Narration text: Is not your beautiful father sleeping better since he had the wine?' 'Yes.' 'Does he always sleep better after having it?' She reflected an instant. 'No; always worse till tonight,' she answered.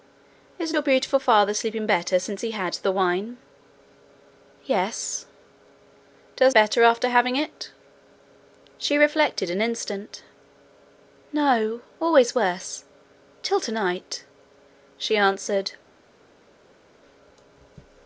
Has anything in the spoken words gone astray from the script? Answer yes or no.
yes